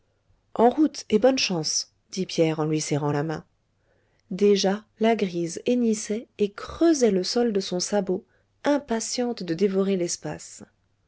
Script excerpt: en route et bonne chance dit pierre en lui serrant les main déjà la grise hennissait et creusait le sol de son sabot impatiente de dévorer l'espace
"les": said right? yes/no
no